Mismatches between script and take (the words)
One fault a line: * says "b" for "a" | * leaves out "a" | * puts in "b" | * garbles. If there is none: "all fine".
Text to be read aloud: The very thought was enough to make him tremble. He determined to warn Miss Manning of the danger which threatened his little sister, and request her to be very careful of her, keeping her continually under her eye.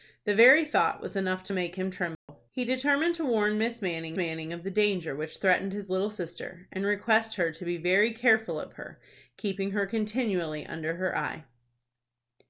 * puts in "Manning"